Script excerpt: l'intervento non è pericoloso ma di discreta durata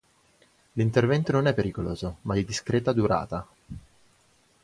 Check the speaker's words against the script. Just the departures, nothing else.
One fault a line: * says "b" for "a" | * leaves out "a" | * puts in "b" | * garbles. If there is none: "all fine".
all fine